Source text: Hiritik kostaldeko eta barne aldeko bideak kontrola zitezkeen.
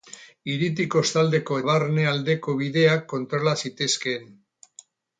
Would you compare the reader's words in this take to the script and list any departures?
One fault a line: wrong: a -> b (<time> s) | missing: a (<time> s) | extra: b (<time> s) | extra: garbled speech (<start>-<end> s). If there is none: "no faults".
missing: eta (1.6 s)